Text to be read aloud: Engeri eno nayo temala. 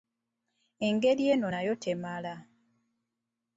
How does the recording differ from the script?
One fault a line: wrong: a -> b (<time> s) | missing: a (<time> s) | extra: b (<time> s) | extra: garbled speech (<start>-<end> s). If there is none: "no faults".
no faults